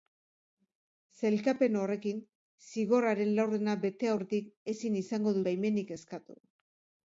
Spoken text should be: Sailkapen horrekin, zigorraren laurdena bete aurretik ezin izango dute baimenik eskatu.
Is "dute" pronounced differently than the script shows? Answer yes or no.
yes